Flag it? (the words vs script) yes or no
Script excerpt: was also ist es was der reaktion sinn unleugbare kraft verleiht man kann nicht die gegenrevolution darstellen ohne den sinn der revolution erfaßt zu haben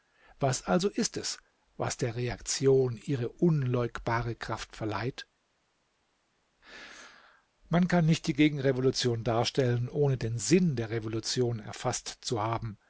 yes